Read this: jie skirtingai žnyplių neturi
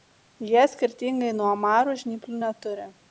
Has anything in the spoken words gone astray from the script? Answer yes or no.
yes